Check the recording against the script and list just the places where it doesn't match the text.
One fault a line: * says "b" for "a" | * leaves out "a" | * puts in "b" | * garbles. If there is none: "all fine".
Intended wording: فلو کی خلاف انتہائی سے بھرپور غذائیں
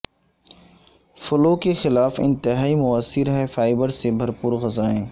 * says "کے" for "کی"
* puts in "موثر ہے فائبر"